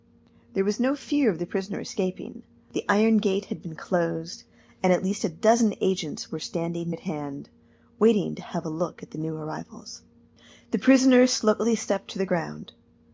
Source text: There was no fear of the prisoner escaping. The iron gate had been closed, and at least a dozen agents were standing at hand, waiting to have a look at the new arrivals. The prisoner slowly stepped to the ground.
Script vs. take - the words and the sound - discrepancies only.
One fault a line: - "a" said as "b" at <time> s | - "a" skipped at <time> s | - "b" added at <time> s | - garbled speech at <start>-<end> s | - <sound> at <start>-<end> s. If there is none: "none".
none